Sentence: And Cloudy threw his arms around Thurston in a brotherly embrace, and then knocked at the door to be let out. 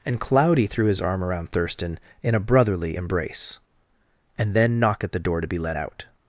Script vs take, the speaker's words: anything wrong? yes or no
yes